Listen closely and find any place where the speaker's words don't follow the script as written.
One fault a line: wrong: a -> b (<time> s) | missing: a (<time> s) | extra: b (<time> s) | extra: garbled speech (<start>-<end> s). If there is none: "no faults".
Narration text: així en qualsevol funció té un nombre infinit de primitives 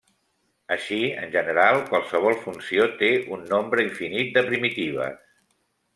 extra: general (1.4 s)